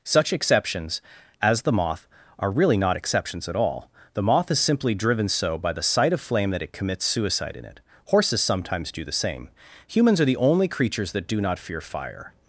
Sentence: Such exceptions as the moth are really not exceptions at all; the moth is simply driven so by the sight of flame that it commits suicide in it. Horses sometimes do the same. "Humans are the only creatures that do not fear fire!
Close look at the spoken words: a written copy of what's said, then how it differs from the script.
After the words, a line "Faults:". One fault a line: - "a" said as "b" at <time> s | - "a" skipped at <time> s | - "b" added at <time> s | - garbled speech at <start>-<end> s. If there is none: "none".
Such exceptions as the moth are really not exceptions at all; the moth is simply driven so by the sight of flame that it commits suicide in it. Horses sometimes do the same. "Humans are the only creatures that do not fear fire!
Faults:
none